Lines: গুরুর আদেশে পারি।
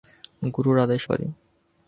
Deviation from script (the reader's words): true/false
false